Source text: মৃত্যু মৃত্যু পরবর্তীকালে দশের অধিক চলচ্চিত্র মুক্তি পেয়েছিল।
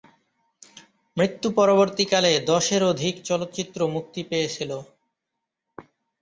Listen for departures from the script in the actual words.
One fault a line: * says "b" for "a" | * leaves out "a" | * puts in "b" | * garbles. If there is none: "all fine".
* leaves out "মৃত্যু"